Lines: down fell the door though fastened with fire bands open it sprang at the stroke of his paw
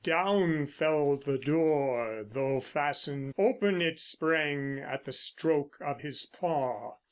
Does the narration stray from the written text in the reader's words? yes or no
yes